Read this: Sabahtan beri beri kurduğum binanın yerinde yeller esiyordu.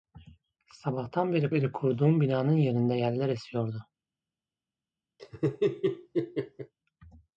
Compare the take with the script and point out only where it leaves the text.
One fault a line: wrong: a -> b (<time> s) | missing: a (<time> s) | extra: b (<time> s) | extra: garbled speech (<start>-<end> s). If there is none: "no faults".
no faults